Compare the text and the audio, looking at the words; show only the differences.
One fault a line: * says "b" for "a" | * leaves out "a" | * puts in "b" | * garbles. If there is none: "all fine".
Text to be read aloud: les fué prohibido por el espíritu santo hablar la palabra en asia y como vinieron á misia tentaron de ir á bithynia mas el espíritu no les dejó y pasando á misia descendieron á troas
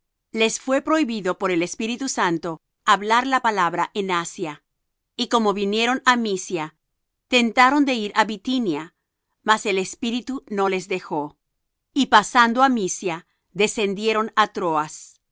all fine